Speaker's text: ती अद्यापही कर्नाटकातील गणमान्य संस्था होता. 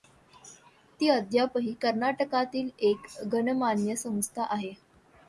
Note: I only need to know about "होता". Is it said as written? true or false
false